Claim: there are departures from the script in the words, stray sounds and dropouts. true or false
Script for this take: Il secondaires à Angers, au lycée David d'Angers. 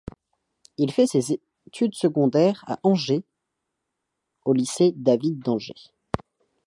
true